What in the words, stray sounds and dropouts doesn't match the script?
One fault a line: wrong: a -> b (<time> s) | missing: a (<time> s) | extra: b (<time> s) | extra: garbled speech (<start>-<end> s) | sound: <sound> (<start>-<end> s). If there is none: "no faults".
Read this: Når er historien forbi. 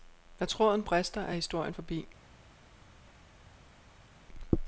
extra: tråden brister (0.5 s)